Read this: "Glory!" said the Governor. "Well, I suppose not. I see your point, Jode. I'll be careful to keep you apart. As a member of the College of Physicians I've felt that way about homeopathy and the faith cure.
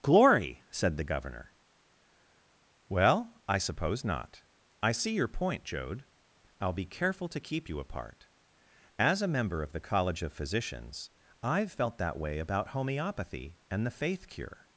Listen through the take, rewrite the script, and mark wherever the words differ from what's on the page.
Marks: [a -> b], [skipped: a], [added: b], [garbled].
"Glory!" said the Governor. "Well, I suppose not. I see your point, Jode. I'll be careful to keep you apart. As a member of the College of Physicians I've felt that way about homeopathy and the faith cure.